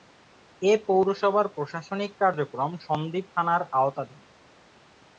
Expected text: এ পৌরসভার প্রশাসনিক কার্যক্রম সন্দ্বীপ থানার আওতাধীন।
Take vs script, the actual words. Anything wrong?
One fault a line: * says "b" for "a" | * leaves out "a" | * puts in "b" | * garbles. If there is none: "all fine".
all fine